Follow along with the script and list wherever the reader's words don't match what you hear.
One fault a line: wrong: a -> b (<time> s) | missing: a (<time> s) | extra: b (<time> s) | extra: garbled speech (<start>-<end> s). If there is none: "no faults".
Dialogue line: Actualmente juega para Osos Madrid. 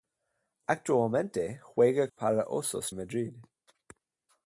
no faults